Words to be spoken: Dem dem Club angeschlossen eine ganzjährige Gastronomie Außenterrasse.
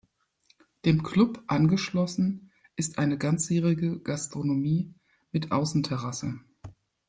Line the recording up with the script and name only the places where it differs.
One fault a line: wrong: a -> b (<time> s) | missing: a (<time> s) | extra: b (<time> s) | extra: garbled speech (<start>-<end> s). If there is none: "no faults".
missing: dem (1.0 s)
extra: ist (2.8 s)
extra: mit (5.3 s)